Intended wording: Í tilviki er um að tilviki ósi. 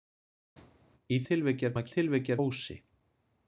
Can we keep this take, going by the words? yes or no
yes